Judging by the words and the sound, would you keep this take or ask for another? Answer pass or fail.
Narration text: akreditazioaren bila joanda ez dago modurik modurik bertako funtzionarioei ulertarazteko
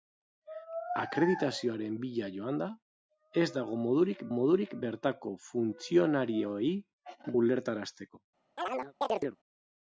fail